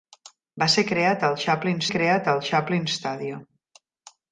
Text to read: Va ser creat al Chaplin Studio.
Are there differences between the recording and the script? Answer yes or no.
yes